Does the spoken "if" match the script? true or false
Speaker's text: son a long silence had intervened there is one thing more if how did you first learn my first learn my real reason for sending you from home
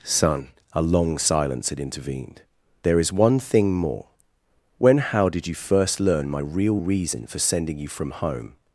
false